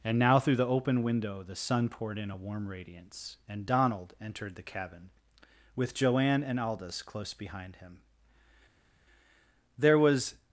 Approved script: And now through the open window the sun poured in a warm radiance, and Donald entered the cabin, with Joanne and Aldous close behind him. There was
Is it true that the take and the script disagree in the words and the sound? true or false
false